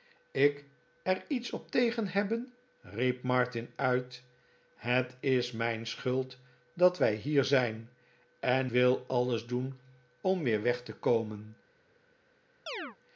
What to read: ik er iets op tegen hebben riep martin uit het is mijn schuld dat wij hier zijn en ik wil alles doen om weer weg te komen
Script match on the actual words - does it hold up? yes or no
no